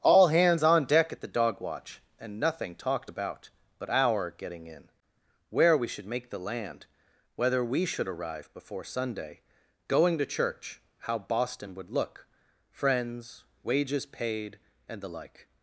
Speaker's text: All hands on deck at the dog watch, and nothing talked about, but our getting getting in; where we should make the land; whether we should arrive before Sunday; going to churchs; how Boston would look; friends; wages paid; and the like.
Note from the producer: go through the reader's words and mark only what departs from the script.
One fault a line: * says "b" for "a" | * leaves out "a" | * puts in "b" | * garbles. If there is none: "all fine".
* leaves out "getting"
* says "church" for "churchs"